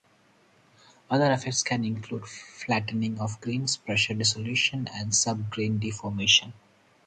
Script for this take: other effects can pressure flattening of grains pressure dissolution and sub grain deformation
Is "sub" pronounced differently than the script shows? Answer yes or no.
no